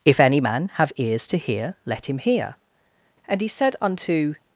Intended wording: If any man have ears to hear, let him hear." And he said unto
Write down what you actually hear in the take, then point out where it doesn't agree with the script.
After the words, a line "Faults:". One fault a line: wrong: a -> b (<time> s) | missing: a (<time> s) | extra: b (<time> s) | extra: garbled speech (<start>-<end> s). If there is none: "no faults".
If any man have ears to hear, let him hear." And he said unto
Faults:
no faults